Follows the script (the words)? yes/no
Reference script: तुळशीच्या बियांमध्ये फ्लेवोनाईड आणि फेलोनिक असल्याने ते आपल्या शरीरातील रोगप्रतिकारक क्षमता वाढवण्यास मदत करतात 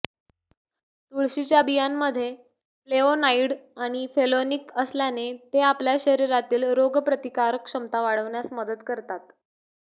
yes